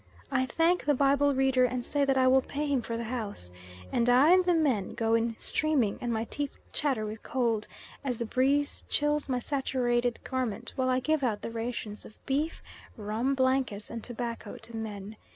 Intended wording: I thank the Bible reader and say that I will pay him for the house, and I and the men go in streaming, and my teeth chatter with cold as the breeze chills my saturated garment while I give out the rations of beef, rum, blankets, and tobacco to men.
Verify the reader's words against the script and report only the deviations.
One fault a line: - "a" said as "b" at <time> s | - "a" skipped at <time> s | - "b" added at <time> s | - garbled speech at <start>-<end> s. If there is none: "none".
none